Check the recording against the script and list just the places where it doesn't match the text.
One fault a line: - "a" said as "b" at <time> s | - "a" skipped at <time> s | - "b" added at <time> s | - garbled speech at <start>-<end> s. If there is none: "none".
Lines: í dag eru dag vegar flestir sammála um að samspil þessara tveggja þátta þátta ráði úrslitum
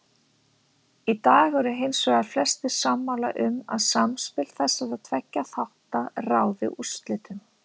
- "dag" said as "hins" at 1.8 s
- "þátta" skipped at 6.1 s